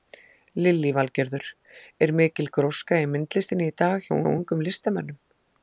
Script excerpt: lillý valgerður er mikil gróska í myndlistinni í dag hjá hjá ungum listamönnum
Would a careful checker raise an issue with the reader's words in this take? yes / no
no